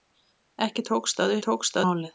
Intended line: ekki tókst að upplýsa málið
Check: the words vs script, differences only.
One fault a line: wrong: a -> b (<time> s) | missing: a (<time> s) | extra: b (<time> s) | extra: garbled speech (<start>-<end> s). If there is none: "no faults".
wrong: upplýsa -> tókst (1.5 s)